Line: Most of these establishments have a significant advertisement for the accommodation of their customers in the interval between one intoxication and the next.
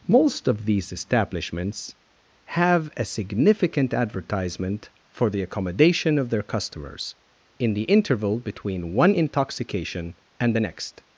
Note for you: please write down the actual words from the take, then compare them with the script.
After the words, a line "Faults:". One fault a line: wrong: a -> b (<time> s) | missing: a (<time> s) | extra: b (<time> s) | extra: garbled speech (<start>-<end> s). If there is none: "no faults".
Most of these establishments have a significant advertisement for the accommodation of their customers in the interval between one intoxication and the next.
Faults:
no faults